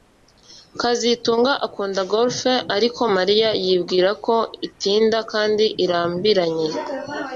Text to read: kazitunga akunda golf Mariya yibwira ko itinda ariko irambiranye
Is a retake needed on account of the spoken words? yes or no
yes